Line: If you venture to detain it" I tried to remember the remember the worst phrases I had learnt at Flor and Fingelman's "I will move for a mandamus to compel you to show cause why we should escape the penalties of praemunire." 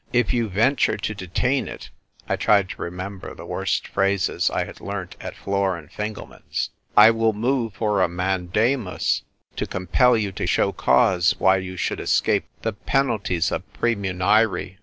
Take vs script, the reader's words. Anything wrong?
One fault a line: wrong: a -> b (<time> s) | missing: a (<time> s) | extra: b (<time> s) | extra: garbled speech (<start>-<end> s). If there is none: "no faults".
missing: remember the (3.5 s)
wrong: we -> you (11.6 s)